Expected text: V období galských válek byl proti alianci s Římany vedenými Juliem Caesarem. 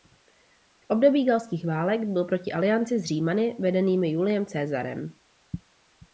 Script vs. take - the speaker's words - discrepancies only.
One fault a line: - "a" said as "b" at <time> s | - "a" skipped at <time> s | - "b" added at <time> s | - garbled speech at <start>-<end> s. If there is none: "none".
none